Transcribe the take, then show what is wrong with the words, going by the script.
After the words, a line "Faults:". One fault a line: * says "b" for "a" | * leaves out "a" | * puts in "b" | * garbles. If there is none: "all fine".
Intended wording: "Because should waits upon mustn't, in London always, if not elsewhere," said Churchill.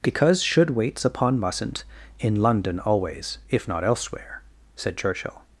"Because should waits upon mustn't, in London always, if not elsewhere," said Churchill.
Faults:
all fine